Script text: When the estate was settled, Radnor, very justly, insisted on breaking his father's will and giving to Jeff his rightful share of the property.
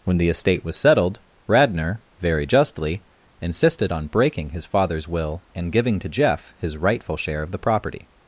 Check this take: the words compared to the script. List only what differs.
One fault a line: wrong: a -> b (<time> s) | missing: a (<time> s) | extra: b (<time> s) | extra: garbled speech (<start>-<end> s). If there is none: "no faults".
no faults